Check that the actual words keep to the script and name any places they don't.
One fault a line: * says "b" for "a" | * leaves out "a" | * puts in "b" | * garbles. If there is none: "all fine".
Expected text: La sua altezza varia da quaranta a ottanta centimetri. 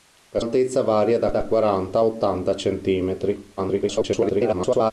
* leaves out "sua"
* puts in "da"
* garbles